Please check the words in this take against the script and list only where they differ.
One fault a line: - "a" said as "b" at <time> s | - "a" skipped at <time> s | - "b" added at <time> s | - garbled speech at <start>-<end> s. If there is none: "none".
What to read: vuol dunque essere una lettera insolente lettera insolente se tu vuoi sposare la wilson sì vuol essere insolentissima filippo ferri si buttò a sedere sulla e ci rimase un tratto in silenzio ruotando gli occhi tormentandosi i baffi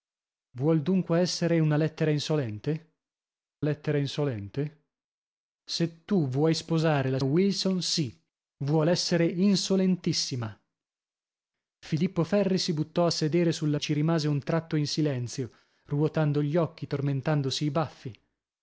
none